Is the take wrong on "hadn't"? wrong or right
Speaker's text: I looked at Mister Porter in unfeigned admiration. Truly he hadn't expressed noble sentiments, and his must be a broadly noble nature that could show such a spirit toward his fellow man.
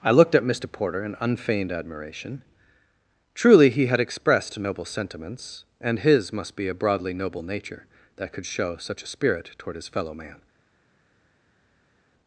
wrong